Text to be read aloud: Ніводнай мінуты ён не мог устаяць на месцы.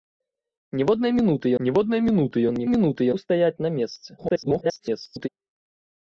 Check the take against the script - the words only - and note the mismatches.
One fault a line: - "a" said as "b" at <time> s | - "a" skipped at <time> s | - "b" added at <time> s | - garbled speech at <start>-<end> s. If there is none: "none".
- "ніводнай мінуты" added at 1.7 s
- "мог" said as "мінуты" at 2.7 s
- garbled speech at 4.2-5.3 s